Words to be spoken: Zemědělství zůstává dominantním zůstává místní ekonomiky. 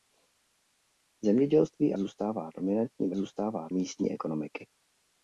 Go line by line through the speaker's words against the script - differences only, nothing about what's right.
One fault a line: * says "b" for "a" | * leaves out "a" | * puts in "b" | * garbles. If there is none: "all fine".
all fine